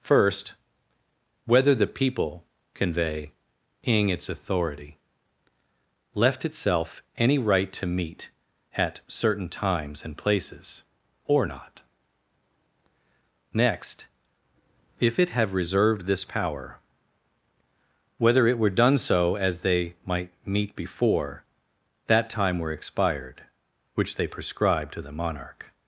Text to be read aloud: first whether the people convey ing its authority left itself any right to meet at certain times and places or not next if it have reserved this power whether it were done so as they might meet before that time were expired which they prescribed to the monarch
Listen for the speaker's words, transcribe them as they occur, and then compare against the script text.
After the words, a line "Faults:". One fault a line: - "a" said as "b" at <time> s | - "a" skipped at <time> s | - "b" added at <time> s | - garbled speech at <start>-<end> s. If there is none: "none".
first whether the people convey ing its authority left itself any right to meet at certain times and places or not next if it have reserved this power whether it were done so as they might meet before that time were expired which they prescribed to the monarch
Faults:
none